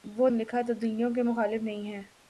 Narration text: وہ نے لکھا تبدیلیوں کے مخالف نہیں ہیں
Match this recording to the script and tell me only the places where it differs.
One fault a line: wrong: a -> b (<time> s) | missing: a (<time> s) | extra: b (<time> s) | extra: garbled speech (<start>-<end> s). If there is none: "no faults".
no faults